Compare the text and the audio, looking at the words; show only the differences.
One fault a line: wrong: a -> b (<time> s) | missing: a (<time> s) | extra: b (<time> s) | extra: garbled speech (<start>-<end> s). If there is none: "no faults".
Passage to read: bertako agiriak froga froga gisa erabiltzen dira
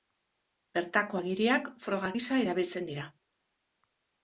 missing: froga (2.1 s)